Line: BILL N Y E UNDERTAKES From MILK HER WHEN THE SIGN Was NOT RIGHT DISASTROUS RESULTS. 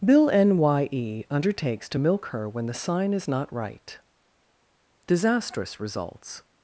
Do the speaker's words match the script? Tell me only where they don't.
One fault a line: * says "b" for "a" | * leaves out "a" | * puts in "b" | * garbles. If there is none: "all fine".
* says "TO" for "From"
* says "IS" for "Was"